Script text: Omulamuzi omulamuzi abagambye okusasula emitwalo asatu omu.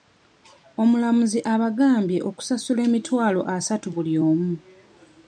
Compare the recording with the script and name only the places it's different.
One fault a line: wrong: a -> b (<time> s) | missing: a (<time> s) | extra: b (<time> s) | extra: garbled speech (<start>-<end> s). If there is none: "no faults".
missing: omulamuzi (1.4 s)
extra: buli (3.9 s)